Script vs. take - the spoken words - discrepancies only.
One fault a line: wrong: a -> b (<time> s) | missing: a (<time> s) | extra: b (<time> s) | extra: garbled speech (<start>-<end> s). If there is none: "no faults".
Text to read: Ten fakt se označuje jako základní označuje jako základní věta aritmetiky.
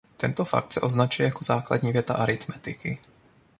wrong: Ten -> Tento (0.2 s)
missing: označuje jako základní (1.9 s)